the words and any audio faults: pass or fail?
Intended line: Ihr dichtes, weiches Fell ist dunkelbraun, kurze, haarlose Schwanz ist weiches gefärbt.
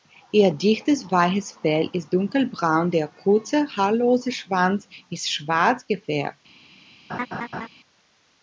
fail